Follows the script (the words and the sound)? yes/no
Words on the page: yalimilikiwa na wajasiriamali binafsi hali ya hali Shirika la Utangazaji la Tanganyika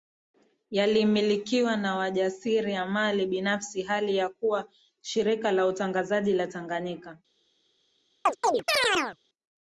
no